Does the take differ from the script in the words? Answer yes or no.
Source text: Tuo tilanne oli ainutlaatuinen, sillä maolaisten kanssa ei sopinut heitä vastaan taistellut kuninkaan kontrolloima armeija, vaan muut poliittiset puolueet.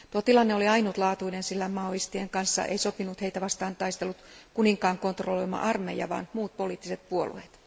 no